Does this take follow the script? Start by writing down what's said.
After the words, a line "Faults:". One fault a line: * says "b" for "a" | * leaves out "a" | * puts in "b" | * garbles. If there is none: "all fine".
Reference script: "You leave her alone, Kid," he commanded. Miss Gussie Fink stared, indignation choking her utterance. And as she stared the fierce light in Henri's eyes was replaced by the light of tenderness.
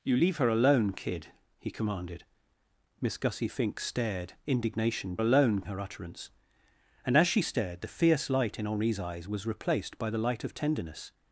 "You leave her alone, Kid," he commanded. Miss Gussie Fink stared, indignation alone her utterance. And as she stared the fierce light in Henri's eyes was replaced by the light of tenderness.
Faults:
* says "alone" for "choking"